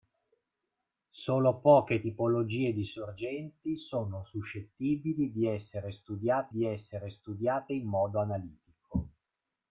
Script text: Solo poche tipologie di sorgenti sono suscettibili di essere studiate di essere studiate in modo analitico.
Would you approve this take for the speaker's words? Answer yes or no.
yes